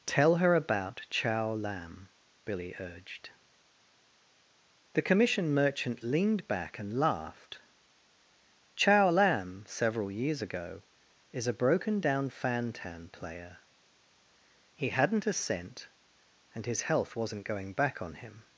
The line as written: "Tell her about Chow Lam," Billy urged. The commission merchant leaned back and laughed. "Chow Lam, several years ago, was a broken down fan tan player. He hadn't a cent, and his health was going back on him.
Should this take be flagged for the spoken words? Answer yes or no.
yes